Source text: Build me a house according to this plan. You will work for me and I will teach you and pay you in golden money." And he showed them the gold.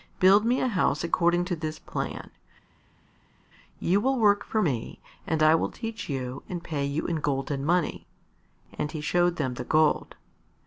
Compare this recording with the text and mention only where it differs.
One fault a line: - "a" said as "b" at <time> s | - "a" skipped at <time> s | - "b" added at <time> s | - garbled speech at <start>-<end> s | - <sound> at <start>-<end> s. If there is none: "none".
none